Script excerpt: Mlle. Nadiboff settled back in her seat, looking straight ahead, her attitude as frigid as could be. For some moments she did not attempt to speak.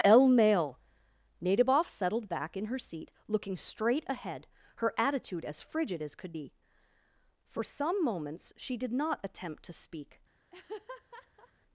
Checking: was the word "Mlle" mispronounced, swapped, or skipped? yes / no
yes